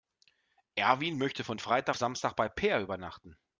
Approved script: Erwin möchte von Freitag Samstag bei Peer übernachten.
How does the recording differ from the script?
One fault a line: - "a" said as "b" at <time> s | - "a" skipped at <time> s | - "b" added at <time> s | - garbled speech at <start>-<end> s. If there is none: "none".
none